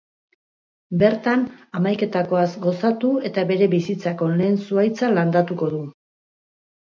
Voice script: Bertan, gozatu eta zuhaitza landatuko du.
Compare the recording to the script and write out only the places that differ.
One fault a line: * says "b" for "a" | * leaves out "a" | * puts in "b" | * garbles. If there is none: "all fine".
* puts in "hamaiketakoaz"
* puts in "bere bizitzako lehen"